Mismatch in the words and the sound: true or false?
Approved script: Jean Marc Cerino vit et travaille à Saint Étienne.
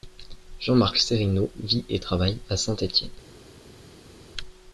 false